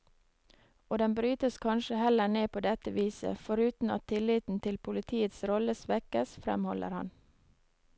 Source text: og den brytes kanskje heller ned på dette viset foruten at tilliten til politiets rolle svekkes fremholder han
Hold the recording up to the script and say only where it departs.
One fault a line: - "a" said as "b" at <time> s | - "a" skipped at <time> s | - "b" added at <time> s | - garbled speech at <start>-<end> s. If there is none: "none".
none